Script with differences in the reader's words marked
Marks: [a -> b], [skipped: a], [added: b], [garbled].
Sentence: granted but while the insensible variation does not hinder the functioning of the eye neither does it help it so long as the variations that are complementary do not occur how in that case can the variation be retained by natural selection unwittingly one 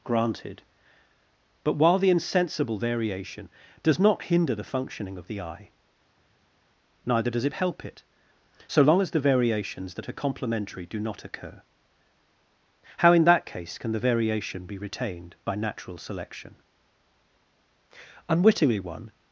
granted but while the insensible variation does not hinder the functioning of the eye neither does it help it so long as the variations that are complementary do not occur how in that case can the variation be retained by natural selection unwittingly one